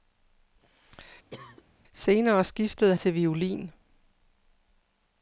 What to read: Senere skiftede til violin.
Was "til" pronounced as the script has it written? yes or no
yes